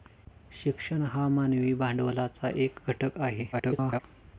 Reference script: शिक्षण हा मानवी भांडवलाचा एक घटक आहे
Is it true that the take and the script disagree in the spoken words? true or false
true